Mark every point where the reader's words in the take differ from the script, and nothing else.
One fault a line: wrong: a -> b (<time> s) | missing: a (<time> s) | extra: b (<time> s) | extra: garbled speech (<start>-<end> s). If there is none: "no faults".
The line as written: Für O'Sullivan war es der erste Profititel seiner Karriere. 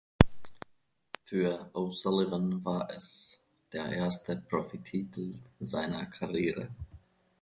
no faults